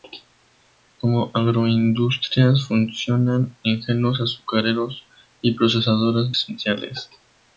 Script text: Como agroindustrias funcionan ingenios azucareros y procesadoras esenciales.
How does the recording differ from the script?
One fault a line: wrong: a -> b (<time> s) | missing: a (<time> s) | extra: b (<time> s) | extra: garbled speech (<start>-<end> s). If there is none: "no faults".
no faults